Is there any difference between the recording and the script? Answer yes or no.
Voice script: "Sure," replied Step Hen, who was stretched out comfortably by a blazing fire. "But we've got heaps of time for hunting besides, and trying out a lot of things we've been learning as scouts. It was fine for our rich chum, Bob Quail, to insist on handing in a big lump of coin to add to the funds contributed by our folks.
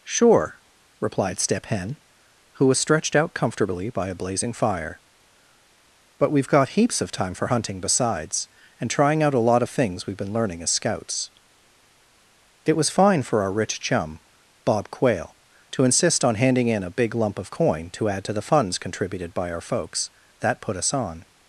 yes